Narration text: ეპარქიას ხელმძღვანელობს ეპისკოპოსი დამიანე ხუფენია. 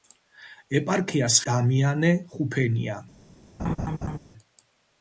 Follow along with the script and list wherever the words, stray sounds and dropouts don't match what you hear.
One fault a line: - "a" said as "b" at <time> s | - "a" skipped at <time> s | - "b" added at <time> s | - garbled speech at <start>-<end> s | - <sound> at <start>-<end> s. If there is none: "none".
- "ხელმძღვანელობს ეპისკოპოსი" skipped at 1.4 s
- laugh at 3.6-4.2 s